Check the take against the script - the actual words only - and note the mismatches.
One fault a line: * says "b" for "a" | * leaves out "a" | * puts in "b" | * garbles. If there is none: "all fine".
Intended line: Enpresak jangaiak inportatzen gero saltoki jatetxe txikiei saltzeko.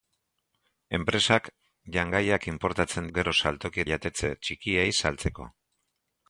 all fine